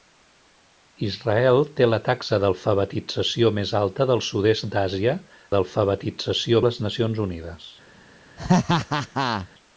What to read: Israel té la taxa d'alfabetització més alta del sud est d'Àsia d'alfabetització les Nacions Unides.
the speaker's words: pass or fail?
pass